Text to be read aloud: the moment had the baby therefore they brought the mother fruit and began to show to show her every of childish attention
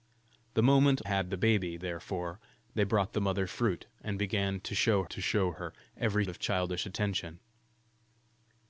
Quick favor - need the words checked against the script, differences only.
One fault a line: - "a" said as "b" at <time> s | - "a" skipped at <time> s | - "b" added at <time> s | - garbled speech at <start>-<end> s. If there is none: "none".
none